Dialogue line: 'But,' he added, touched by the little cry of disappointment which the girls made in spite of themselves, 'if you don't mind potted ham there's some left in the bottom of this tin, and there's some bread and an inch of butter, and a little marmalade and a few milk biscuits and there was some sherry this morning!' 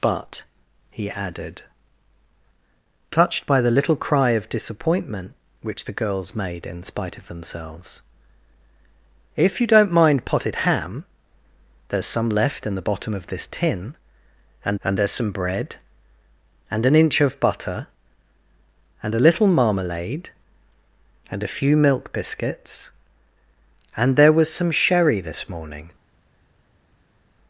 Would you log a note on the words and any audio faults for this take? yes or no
yes